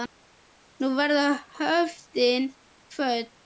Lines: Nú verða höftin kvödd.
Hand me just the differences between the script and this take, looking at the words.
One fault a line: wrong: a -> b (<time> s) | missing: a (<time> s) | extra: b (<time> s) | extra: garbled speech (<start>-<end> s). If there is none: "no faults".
no faults